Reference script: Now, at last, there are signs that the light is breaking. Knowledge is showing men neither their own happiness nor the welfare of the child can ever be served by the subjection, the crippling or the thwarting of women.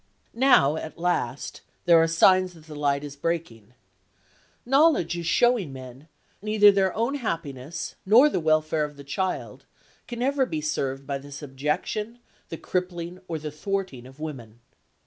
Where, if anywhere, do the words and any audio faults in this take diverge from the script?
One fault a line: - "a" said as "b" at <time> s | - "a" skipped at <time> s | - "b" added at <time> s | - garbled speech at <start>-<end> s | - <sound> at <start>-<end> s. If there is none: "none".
none